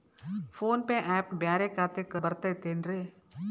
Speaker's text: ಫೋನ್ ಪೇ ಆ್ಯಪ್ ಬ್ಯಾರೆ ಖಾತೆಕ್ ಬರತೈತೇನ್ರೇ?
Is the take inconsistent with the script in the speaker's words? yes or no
no